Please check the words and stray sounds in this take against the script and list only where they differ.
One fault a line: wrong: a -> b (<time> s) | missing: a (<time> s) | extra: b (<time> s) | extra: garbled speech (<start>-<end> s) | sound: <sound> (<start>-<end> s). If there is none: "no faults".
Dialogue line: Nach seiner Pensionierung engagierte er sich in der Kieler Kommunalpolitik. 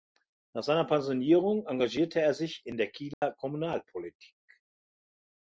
sound: dropout (3.1-3.2 s)